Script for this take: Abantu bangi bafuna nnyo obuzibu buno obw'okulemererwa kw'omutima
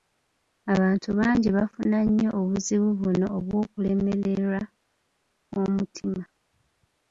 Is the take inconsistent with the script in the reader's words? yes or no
no